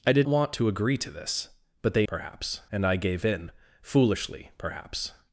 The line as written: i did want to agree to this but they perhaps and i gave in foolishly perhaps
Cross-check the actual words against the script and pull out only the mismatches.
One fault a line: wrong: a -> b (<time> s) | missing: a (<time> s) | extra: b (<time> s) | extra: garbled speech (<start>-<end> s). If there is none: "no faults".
no faults